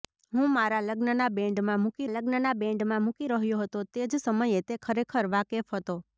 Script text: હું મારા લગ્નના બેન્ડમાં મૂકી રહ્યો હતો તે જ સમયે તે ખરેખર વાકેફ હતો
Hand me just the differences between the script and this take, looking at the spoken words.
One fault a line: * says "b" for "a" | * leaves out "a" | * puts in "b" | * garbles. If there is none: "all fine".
* puts in "લગ્નના બેન્ડમાં મૂકી"